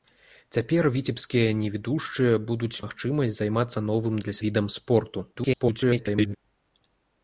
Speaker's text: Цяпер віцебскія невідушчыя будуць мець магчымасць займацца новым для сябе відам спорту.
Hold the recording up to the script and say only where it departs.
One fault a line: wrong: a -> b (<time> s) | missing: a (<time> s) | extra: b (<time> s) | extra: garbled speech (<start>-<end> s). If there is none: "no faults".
missing: мець (2.8 s)
missing: сябе (4.4 s)
extra: garbled speech (5.3-6.4 s)